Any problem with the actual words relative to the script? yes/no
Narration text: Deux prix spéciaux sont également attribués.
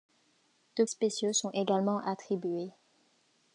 yes